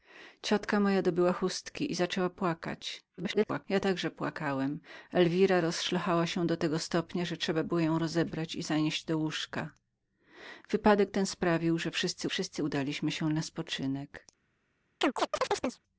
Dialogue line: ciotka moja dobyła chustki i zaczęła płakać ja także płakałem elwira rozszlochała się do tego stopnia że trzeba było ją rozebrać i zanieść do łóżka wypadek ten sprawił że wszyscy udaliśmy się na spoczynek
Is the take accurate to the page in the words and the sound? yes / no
no